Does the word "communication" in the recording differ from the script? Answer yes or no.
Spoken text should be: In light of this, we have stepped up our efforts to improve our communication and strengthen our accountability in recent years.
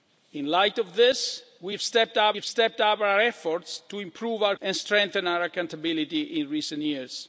yes